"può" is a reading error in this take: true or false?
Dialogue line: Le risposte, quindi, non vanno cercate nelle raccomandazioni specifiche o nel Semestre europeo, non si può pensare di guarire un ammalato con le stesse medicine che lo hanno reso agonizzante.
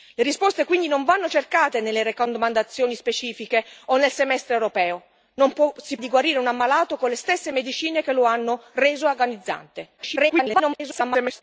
true